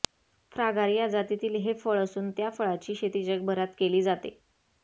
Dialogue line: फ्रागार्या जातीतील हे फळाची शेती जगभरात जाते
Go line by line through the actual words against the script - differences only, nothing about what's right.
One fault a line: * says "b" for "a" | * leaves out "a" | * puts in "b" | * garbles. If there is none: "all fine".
* puts in "फळ असून त्या"
* puts in "केली"